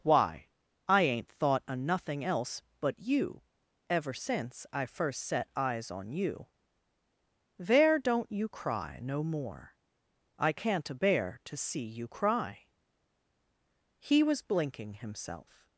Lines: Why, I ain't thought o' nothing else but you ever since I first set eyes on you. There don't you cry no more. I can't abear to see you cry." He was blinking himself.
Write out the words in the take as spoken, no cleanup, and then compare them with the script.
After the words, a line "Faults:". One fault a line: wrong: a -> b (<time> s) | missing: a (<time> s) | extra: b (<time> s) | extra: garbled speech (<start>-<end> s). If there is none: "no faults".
Why, I ain't thought o' nothing else but you ever since I first set eyes on you. There don't you cry no more. I can't abear to see you cry." He was blinking himself.
Faults:
no faults